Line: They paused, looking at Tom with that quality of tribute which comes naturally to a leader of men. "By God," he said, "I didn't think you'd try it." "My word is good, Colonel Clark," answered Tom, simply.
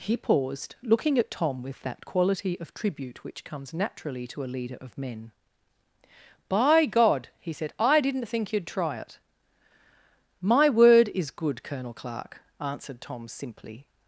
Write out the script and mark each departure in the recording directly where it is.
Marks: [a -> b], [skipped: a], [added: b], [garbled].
[They -> He] paused, looking at Tom with that quality of tribute which comes naturally to a leader of men. "By God," he said, "I didn't think you'd try it." "My word is good, Colonel Clark," answered Tom, simply.